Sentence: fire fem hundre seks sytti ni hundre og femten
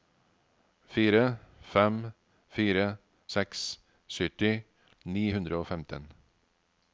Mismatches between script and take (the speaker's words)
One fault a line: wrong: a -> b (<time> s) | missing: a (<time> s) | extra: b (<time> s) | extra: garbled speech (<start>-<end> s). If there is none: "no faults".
wrong: hundre -> fire (2.5 s)